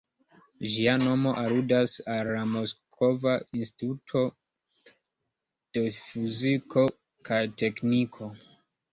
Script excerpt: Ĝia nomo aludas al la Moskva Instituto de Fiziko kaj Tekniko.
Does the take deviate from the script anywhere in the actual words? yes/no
no